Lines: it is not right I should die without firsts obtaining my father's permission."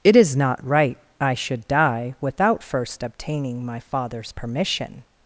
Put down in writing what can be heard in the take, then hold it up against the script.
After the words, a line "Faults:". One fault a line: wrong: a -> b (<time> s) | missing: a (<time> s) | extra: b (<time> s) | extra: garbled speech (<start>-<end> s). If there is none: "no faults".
it is not right I should die without first obtaining my father's permission."
Faults:
wrong: firsts -> first (2.6 s)